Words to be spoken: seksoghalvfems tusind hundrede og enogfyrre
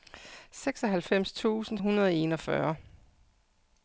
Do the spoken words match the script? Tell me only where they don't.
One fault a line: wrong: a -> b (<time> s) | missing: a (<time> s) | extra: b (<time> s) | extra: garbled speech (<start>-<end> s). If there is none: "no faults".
no faults